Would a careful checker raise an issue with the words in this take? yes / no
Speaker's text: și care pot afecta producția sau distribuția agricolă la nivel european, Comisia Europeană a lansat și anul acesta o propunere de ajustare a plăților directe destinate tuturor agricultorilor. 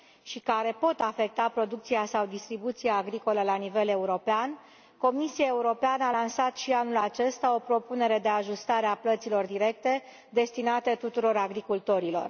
no